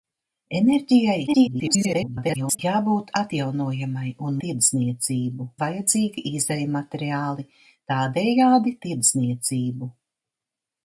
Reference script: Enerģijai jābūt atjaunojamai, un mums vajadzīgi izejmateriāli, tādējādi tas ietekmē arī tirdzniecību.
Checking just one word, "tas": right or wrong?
wrong